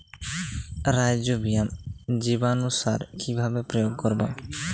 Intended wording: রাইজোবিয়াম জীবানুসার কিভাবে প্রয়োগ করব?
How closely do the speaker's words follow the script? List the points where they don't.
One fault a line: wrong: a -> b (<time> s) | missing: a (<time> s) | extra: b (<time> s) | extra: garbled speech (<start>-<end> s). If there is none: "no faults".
no faults